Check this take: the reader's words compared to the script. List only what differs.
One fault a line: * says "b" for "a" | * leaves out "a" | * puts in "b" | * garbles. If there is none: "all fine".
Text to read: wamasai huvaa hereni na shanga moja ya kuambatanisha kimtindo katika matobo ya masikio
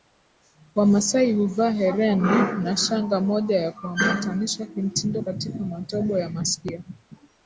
all fine